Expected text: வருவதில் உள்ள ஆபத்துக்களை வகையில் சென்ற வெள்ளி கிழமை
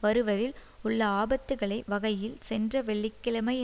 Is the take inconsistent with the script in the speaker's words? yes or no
no